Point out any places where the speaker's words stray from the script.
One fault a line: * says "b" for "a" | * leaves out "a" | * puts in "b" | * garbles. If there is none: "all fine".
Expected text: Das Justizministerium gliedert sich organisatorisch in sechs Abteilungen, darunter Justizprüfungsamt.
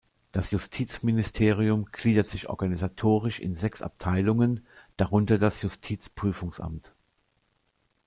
* puts in "das"